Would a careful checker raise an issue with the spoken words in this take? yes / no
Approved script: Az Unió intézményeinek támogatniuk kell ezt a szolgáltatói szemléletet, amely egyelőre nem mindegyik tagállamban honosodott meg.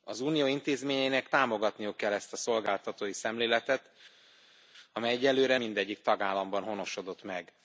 yes